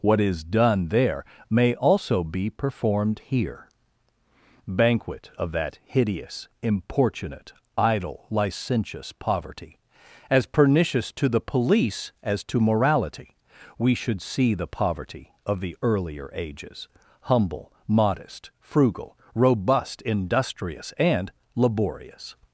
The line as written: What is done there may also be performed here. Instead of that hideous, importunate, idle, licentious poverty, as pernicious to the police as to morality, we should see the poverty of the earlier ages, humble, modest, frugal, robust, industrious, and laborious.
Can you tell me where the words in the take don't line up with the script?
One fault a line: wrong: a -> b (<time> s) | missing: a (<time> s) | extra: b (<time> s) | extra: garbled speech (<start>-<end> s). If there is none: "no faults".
wrong: Instead -> Banquet (4.7 s)